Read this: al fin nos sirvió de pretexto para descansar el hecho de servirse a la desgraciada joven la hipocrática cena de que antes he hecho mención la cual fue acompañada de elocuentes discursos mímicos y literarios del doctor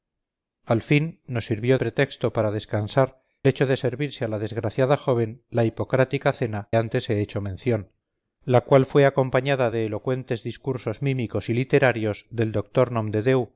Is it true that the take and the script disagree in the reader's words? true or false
true